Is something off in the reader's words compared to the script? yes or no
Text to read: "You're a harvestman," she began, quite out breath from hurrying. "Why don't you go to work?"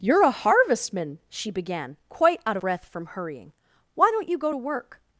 no